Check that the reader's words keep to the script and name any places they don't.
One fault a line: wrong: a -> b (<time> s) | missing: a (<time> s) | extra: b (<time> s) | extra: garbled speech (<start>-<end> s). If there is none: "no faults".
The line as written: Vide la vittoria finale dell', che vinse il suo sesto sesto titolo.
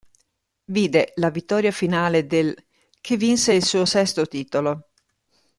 missing: sesto (4.3 s)